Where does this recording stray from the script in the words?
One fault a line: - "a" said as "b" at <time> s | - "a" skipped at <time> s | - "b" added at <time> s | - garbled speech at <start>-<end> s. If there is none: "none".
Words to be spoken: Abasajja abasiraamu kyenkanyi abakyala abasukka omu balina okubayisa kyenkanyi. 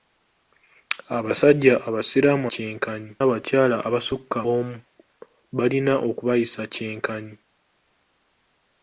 none